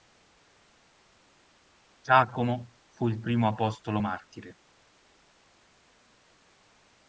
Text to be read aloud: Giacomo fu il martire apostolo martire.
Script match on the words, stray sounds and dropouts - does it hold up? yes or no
no